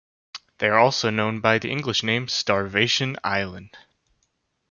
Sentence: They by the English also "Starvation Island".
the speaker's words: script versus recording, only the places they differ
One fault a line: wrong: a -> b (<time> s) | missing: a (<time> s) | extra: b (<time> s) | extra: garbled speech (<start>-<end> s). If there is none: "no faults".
extra: are also known (0.7 s)
wrong: also -> name (2.0 s)